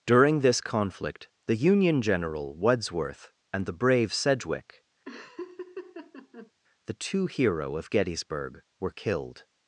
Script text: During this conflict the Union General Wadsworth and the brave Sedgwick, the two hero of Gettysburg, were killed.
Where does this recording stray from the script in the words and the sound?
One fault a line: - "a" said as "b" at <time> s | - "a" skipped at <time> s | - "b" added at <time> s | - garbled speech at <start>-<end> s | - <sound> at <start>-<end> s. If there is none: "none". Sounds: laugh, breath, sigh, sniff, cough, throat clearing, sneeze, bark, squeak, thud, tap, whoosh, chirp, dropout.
- laugh at 5.1-6.5 s